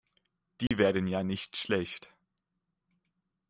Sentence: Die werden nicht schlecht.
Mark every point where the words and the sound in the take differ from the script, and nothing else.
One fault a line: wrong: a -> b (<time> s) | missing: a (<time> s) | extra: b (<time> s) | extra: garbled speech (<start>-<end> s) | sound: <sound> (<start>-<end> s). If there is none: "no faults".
sound: dropout (0.7-0.7 s)
extra: ja (1.1 s)